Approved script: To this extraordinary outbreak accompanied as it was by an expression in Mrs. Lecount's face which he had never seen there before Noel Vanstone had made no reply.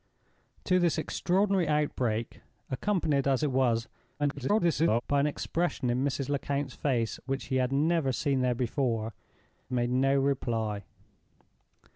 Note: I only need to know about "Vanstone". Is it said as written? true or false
false